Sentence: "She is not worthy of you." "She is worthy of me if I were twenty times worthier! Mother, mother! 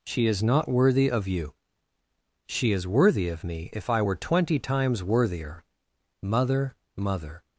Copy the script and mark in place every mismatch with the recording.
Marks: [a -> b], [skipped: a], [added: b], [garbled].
"She is not worthy of you." "She is worthy of me if I were twenty times worthier! Mother, mother!